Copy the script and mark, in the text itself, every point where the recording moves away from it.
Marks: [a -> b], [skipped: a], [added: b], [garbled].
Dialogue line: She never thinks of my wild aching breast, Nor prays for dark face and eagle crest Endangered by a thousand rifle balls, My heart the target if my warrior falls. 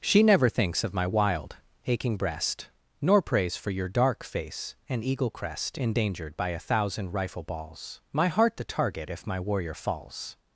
She never thinks of my wild aching breast, Nor prays for [added: your] dark face and eagle crest Endangered by a thousand rifle balls, My heart the target if my warrior falls.